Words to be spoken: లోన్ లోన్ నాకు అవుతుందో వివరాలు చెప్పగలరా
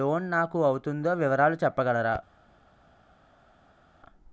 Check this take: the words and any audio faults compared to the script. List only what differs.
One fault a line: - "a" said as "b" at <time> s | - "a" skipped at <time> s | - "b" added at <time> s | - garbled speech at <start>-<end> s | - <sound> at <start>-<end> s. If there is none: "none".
- "లోన్" skipped at 0.3 s